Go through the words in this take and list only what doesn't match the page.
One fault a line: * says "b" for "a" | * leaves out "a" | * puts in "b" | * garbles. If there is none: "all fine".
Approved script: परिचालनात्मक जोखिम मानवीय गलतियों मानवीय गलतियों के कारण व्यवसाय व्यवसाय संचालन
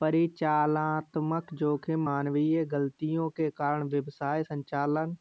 * leaves out "मानवीय गलतियों"
* leaves out "व्यवसाय"